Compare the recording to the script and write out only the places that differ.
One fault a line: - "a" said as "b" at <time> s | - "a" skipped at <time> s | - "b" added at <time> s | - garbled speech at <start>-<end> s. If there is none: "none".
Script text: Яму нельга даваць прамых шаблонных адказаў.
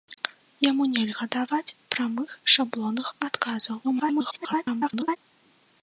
- garbled speech at 3.8-5.2 s